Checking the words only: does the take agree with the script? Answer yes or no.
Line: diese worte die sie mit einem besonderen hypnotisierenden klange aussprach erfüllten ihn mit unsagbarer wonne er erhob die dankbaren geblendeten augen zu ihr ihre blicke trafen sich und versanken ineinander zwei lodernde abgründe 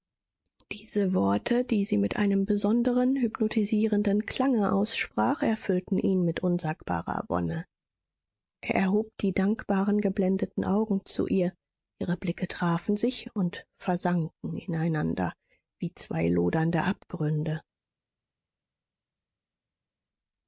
no